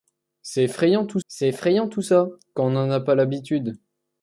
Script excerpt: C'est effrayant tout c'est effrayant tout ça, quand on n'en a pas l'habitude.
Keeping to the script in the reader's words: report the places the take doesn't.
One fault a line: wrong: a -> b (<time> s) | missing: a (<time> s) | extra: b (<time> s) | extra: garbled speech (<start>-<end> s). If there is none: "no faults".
no faults